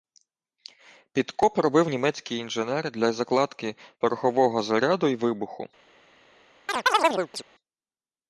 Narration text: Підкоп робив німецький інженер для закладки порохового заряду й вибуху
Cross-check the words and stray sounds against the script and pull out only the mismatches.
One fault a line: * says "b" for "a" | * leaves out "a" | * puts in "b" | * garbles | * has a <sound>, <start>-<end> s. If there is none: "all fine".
* has a chirp, 6.7-7.4 s